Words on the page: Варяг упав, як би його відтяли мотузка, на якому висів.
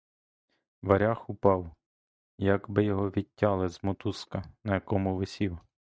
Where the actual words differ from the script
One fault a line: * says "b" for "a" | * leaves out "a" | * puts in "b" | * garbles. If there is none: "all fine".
* puts in "з"